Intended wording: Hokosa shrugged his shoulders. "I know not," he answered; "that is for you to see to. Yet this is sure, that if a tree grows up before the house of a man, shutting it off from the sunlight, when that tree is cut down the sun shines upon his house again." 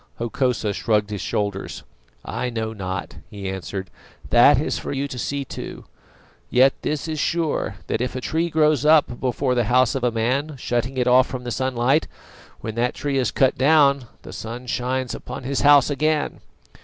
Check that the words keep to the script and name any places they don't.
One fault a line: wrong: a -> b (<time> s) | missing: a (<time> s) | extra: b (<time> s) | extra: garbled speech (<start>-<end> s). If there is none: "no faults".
no faults